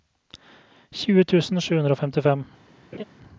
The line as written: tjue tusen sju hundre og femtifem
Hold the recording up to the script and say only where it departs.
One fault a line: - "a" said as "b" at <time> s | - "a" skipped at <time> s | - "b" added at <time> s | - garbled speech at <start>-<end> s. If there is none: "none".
none